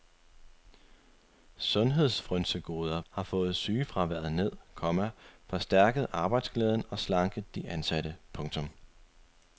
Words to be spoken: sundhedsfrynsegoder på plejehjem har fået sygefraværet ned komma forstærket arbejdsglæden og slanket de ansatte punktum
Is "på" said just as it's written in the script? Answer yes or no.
no